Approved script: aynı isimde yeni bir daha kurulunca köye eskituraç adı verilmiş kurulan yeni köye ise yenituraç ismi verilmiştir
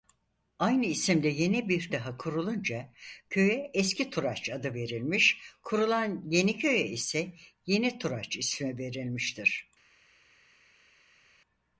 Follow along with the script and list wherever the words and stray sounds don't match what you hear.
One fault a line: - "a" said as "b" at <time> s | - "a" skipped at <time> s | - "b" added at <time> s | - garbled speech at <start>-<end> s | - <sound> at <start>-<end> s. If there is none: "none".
none